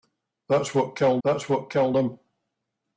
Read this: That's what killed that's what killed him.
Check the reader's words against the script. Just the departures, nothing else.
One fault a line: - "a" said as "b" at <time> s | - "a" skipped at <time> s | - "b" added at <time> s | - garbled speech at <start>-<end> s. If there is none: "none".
none